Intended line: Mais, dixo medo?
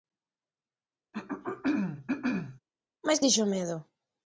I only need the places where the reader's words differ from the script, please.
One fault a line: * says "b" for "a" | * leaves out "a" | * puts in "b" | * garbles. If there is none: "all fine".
all fine